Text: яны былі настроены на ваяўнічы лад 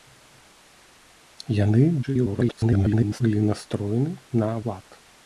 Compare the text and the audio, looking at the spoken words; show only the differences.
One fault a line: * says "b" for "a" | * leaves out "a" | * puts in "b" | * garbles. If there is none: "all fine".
* garbles
* leaves out "ваяўнічы"